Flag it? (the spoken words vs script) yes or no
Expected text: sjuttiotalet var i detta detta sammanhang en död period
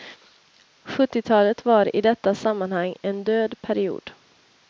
yes